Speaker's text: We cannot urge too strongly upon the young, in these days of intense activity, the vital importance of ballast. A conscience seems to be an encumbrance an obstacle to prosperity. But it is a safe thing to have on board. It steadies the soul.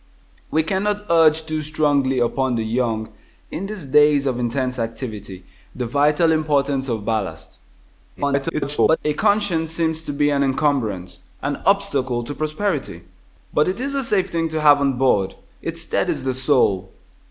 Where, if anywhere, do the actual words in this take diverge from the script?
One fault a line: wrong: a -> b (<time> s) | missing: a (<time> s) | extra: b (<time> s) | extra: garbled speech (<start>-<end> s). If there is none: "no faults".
extra: garbled speech (8.2-9.0 s)